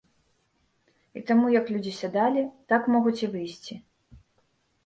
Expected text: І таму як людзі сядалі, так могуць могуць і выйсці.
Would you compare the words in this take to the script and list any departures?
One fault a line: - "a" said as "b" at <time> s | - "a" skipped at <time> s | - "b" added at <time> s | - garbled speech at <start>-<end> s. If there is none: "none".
- "могуць" skipped at 3.2 s